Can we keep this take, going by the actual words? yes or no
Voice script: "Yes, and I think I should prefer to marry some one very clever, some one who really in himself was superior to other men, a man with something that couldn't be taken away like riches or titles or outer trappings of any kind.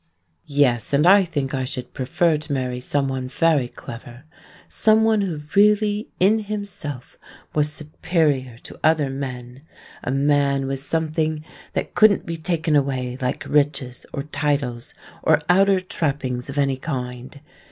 yes